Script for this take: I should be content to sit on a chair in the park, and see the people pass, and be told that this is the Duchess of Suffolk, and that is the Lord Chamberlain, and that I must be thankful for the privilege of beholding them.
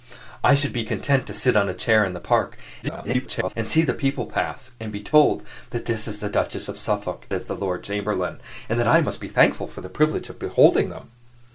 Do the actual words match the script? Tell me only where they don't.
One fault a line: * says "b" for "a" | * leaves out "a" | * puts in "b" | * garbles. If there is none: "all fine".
* garbles
* leaves out "and that"